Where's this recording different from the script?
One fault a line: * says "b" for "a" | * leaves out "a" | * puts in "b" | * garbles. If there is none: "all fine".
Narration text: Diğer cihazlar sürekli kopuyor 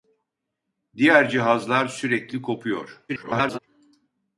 * garbles